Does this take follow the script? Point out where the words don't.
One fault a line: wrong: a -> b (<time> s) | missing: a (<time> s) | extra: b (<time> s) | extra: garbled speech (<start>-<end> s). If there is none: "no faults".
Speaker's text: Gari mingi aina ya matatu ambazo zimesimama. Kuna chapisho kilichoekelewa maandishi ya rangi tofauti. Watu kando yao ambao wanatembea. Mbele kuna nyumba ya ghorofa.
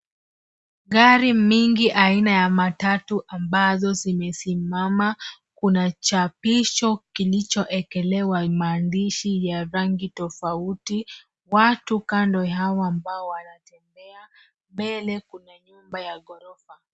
no faults